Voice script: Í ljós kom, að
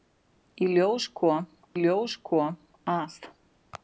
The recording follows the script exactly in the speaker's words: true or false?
false